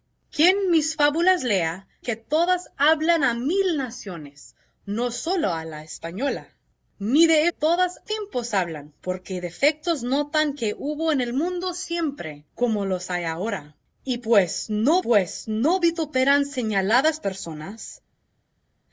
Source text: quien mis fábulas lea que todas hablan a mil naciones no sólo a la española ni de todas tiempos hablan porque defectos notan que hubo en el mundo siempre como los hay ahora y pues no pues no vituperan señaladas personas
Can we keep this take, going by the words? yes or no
yes